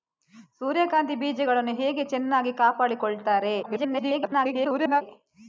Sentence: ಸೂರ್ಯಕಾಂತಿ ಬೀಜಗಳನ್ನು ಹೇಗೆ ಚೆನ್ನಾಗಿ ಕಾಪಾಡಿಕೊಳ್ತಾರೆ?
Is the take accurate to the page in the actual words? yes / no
no